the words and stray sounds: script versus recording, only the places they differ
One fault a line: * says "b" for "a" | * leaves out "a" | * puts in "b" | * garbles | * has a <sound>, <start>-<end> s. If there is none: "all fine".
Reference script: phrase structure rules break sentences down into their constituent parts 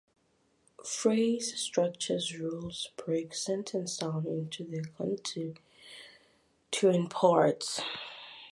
all fine